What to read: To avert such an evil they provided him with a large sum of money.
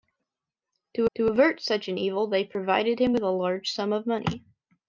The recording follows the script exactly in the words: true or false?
false